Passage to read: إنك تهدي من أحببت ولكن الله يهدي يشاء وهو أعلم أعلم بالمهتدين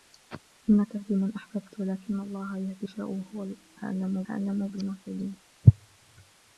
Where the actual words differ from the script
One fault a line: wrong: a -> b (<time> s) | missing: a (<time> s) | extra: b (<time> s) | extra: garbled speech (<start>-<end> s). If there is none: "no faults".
no faults